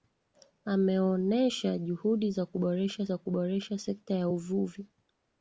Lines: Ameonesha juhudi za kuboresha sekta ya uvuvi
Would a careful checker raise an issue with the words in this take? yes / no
yes